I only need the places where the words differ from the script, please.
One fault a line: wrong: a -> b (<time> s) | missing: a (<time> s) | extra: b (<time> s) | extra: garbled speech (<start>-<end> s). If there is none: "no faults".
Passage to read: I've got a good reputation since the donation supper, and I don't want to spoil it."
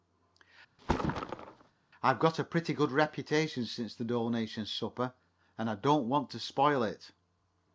extra: pretty (2.4 s)